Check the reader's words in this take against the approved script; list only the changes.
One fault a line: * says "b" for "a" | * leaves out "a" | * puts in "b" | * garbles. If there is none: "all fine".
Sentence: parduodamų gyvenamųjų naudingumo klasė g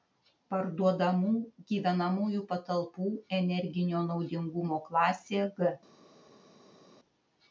* puts in "patalpų energinio"